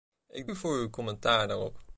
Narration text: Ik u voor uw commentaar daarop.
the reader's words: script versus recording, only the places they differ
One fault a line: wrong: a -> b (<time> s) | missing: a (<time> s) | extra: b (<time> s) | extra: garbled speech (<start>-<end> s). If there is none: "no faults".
no faults